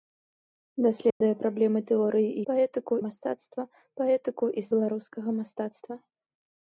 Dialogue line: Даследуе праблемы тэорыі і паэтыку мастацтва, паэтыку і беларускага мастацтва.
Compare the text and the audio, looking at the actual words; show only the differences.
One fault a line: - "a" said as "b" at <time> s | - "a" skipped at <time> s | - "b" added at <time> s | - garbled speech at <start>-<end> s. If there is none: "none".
none